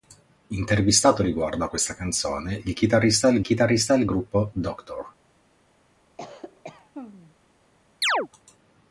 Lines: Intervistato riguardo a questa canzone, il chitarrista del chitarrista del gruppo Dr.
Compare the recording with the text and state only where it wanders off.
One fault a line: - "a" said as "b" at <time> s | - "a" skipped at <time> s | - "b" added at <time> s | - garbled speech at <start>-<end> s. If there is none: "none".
none